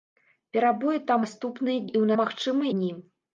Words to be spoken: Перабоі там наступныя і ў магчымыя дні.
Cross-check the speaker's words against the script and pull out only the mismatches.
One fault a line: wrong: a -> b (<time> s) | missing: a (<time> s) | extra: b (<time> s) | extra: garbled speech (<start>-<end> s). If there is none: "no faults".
no faults